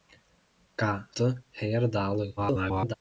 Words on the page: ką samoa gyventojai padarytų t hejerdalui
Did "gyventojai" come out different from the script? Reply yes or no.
yes